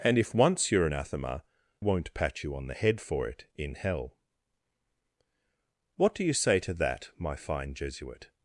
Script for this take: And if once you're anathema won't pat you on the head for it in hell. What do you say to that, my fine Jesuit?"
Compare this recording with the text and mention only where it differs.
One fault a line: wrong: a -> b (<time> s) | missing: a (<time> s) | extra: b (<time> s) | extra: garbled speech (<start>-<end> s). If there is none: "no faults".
no faults